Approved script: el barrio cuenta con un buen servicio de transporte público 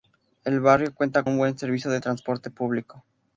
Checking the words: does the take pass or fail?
fail